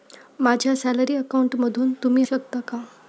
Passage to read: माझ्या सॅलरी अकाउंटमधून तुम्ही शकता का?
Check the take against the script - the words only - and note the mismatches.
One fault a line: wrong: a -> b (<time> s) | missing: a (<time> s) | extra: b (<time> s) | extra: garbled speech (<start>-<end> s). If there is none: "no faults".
no faults